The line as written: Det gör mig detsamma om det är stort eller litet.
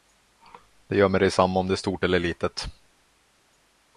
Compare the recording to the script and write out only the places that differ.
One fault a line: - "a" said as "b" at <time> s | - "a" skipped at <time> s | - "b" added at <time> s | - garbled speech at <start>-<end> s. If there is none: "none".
none